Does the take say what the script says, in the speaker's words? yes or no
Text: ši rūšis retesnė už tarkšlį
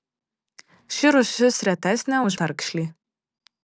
yes